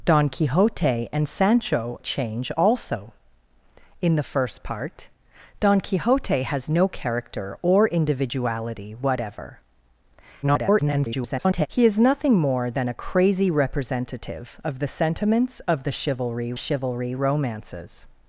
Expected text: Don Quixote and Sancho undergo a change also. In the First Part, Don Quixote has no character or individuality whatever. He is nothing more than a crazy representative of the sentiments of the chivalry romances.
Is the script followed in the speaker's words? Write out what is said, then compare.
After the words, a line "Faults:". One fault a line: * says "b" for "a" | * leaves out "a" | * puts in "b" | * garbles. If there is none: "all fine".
Don Quixote and Sancho a change also. In the First Part, Don Quixote has no character or individuality whatever. [garbled] He is nothing more than a crazy representative of the sentiments of the chivalry chivalry romances.
Faults:
* leaves out "undergo"
* garbles
* puts in "chivalry"